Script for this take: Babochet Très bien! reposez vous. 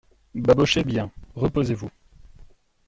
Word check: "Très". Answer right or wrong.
wrong